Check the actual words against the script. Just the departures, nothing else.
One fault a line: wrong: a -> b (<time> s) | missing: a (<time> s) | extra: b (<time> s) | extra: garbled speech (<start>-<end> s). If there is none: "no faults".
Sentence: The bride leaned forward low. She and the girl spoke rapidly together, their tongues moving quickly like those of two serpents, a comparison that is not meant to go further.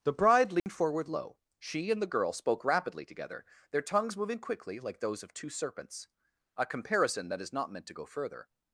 no faults